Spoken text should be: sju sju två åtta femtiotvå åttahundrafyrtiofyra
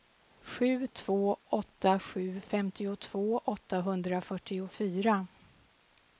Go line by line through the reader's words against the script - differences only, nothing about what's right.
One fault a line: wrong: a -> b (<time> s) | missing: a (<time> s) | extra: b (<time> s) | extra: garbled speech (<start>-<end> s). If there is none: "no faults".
missing: sju (0.9 s)
extra: sju (2.0 s)